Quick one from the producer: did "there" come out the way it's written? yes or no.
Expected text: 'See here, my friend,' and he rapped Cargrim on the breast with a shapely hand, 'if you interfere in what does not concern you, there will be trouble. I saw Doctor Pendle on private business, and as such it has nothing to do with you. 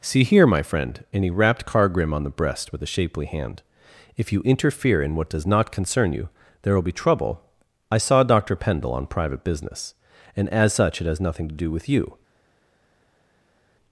yes